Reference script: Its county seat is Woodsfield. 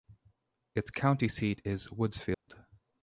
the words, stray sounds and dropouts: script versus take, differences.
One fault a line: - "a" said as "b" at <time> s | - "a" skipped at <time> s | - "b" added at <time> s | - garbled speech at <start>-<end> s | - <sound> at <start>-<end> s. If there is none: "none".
- dropout at 2.3-2.5 s